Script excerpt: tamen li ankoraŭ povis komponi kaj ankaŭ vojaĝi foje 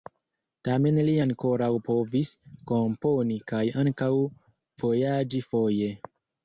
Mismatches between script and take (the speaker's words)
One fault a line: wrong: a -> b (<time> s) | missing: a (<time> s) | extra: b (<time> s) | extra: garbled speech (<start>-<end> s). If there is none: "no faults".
no faults